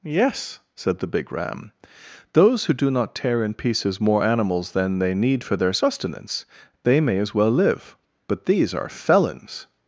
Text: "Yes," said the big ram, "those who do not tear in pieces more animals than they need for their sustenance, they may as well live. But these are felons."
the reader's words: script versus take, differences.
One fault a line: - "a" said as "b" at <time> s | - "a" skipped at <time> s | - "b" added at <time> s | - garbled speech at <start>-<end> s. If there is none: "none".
none